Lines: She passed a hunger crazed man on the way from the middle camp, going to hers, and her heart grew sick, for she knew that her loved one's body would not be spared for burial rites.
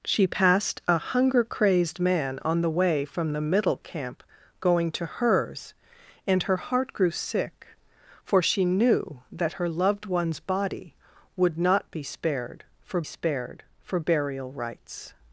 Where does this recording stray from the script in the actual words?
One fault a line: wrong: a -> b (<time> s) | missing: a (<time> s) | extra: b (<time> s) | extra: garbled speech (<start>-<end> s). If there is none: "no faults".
extra: spared for (13.0 s)